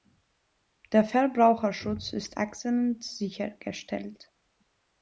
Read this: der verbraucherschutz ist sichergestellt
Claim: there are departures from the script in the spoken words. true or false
true